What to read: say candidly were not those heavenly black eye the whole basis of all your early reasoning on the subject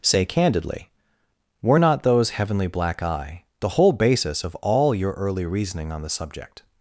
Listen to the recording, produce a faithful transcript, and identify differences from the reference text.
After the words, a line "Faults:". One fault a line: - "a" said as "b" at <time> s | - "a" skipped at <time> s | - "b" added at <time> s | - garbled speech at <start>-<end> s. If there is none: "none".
say candidly were not those heavenly black eye the whole basis of all your early reasoning on the subject
Faults:
none